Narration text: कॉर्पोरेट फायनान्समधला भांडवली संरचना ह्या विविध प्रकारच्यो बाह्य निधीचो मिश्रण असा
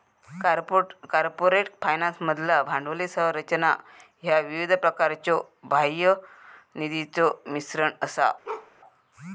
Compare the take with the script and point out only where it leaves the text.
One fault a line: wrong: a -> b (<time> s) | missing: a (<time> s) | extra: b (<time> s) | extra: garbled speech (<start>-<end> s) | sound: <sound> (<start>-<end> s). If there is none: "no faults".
sound: bark (8.4-8.7 s)